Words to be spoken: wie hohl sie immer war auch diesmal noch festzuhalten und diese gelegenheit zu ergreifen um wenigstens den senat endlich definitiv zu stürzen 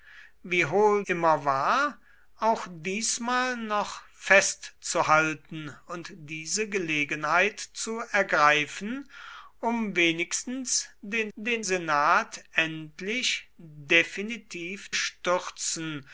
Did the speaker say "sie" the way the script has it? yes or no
no